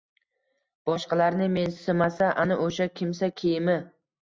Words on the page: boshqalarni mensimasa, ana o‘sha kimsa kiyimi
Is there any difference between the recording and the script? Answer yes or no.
no